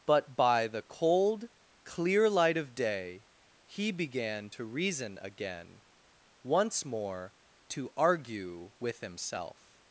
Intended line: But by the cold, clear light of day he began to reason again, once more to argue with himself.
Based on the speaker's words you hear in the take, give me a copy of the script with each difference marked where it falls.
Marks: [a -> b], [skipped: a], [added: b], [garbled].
But by the cold, clear light of day he began to reason again, once more to argue with himself.